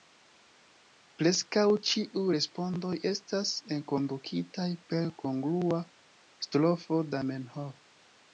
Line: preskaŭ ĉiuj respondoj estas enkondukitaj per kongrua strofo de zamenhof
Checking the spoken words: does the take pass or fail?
fail